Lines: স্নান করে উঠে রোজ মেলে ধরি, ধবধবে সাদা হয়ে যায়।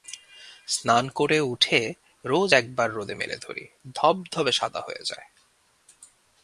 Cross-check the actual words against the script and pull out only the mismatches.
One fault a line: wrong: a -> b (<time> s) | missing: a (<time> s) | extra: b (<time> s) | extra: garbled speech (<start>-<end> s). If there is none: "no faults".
extra: একবার রোদে (2.5 s)